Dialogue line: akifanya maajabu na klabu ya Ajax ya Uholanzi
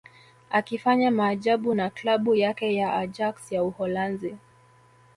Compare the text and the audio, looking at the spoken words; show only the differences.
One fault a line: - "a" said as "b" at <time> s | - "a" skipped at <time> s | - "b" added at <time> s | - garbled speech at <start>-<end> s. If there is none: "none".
- "yake" added at 2.3 s